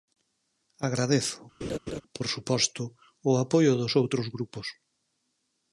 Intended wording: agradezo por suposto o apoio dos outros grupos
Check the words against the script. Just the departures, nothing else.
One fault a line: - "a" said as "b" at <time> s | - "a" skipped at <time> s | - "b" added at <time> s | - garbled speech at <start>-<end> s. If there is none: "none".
none